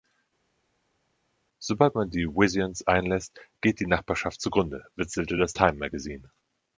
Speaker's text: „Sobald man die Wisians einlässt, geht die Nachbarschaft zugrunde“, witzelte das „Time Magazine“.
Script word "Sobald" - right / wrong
right